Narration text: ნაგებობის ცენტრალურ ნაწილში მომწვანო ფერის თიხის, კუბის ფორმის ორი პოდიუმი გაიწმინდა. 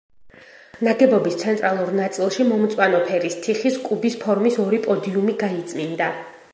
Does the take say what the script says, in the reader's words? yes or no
yes